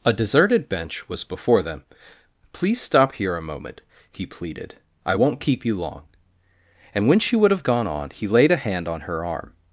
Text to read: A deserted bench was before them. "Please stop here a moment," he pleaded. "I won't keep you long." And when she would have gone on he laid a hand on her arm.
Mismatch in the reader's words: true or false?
false